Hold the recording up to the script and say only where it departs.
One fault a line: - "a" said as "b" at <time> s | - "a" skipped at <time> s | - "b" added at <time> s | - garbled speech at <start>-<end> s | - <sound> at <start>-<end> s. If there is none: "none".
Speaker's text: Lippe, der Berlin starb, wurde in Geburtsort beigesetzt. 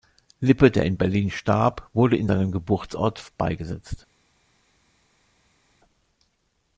- "in" added at 0.8 s
- "seinem" added at 2.2 s